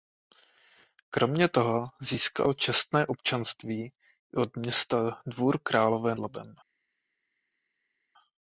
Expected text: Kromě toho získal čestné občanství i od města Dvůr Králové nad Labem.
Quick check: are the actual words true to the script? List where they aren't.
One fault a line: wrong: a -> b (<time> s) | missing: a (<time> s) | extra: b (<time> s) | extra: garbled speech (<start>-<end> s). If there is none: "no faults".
missing: nad (6.2 s)